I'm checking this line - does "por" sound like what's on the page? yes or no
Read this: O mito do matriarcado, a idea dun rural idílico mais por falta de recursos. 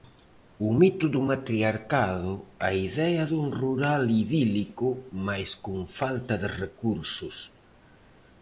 no